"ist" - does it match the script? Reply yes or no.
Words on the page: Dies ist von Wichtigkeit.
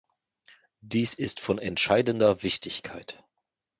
yes